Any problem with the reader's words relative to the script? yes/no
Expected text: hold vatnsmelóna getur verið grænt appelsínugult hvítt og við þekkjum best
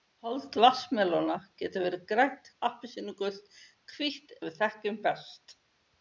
no